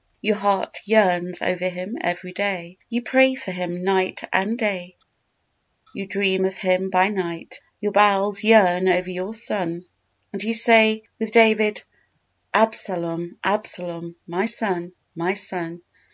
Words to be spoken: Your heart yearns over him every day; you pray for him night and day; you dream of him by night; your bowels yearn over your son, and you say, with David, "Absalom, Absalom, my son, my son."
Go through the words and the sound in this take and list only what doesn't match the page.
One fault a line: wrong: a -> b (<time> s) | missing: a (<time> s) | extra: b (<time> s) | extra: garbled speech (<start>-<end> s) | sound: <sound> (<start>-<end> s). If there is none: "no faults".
no faults